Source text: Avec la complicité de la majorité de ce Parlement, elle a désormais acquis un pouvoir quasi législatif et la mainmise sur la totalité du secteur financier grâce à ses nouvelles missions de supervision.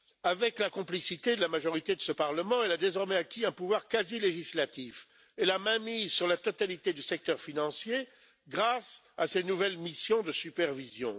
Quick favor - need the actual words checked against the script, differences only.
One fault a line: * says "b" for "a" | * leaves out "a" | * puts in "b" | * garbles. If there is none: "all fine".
all fine